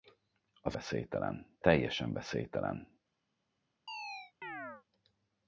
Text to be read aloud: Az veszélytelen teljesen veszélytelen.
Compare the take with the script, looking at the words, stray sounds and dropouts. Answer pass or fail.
fail